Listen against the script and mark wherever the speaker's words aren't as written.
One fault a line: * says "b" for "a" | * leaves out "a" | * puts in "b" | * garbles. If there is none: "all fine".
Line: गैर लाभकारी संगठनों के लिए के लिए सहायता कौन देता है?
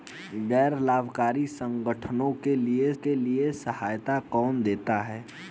all fine